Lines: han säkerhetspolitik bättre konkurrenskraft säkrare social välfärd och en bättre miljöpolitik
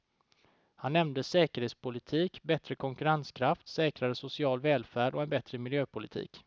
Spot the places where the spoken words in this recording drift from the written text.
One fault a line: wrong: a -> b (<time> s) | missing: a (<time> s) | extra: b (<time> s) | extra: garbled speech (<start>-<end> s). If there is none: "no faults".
extra: nämnde (0.9 s)